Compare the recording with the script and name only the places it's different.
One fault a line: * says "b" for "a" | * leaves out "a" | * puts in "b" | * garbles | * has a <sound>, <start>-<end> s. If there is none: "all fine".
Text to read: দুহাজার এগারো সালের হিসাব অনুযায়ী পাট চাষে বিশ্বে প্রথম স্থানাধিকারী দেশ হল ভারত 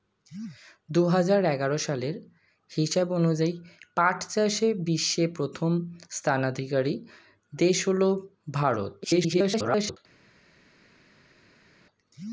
* garbles